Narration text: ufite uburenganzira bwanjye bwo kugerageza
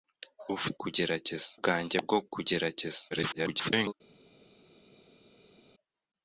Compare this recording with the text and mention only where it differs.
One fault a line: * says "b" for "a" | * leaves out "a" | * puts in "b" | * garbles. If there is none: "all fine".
* says "kugerageza" for "uburenganzira"
* garbles